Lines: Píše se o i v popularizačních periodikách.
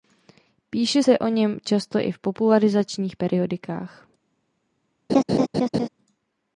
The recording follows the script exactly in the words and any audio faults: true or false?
false